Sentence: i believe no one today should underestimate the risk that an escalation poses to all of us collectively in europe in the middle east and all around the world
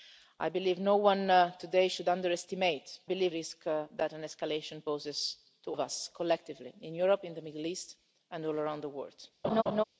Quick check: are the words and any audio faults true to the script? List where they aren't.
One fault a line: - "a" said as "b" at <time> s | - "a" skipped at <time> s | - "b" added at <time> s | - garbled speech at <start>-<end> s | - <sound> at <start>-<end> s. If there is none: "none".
- "the" said as "believe" at 3.0 s
- "all" skipped at 5.7 s
- laugh at 9.4-9.8 s